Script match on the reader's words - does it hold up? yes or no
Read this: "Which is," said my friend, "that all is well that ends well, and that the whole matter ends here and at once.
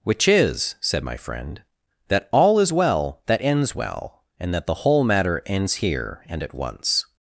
yes